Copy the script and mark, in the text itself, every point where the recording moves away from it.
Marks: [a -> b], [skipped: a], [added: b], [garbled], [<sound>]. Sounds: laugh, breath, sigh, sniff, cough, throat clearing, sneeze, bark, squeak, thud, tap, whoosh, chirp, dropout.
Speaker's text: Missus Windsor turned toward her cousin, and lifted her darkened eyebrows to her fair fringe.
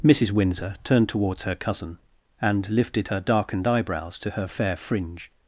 Missus Windsor turned [toward -> towards] her cousin, and lifted her darkened eyebrows to her fair fringe.